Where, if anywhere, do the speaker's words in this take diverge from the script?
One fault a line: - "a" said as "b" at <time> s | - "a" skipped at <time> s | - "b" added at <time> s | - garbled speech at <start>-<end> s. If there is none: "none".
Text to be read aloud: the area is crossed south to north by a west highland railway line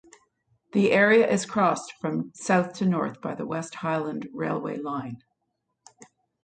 - "from" added at 2.0 s
- "a" said as "the" at 3.4 s